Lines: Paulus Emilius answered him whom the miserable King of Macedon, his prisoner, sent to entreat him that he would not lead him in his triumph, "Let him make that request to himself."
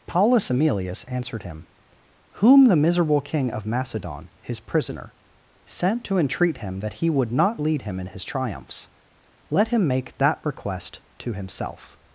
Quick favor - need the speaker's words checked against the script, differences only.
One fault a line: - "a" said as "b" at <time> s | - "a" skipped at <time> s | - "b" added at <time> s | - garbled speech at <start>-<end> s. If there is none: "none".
- "triumph" said as "triumphs" at 8.2 s